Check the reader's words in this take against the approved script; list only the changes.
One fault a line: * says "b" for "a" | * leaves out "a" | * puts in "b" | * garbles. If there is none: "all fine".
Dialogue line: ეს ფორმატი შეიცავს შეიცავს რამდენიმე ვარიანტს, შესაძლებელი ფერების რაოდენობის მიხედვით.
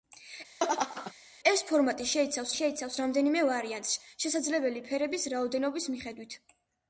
all fine